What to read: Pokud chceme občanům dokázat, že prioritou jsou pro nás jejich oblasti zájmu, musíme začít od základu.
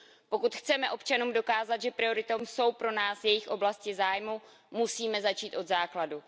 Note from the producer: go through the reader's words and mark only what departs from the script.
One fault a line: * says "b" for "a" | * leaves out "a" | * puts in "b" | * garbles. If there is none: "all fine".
all fine